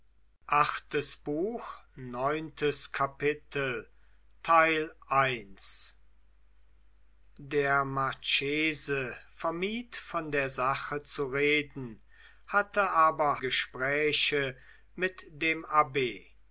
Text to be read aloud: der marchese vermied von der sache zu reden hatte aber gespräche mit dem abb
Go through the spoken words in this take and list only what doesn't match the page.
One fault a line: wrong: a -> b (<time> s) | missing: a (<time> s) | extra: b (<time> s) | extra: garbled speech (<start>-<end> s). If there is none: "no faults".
no faults